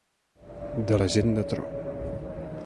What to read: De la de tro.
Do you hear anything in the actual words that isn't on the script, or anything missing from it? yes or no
yes